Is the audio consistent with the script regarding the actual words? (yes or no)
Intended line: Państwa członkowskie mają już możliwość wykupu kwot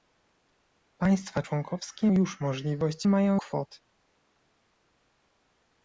no